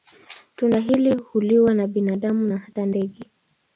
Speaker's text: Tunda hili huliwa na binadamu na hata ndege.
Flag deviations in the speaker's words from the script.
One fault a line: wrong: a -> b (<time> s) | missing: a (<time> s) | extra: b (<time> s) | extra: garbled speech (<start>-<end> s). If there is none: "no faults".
no faults